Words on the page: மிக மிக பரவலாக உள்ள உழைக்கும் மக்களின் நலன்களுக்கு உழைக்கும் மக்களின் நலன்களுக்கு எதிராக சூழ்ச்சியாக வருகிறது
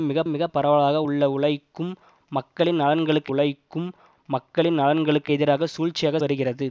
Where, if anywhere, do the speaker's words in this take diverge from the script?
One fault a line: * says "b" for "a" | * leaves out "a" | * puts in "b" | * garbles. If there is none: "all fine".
all fine